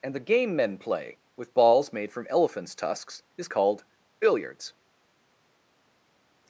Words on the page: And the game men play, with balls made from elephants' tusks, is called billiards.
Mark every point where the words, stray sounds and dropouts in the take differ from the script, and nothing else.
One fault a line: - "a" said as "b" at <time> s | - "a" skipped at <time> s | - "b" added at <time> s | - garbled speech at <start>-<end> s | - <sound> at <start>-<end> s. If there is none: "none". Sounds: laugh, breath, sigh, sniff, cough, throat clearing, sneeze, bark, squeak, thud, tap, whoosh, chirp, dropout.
none